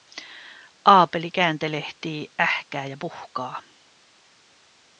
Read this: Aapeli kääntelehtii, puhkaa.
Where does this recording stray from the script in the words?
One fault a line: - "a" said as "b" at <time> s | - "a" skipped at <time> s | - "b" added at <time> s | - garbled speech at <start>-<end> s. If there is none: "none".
- "ähkää ja" added at 2.4 s